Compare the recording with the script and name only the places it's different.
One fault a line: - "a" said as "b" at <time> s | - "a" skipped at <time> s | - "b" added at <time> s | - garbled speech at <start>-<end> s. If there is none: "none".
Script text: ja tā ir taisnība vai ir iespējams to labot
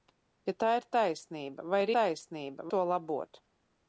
- "iespējams" said as "taisnība" at 2.0 s